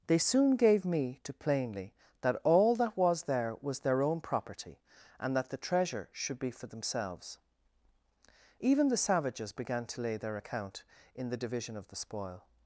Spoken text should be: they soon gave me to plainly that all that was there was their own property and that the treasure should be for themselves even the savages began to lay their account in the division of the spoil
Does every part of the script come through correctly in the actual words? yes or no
yes